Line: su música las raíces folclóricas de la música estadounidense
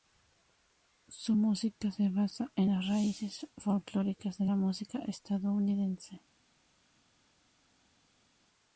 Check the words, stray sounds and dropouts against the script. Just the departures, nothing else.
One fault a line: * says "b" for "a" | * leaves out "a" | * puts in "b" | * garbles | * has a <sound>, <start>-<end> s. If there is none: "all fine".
* puts in "se basa en"